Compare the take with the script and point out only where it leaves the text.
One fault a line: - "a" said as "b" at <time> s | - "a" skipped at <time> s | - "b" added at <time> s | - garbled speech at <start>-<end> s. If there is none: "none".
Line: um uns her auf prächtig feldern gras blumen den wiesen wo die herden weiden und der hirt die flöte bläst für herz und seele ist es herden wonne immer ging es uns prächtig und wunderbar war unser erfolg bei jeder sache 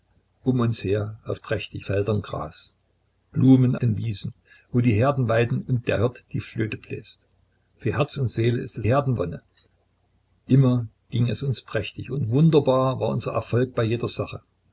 none